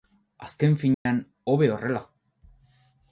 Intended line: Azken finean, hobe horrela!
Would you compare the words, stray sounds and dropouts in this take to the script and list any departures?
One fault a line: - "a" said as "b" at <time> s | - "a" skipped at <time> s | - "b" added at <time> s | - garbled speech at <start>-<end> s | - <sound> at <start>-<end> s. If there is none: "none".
- dropout at 0.9-1.1 s